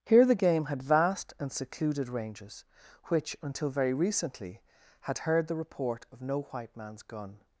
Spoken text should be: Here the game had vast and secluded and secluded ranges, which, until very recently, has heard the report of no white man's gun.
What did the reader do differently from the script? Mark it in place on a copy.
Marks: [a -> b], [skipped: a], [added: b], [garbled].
Here the game had vast and secluded [skipped: and secluded] ranges, which, until very recently, [has -> had] heard the report of no white man's gun.